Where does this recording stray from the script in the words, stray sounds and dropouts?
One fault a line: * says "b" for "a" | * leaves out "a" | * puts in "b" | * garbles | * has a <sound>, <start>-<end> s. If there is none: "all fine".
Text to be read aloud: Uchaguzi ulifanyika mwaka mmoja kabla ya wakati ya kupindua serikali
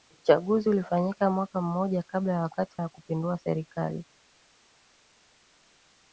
all fine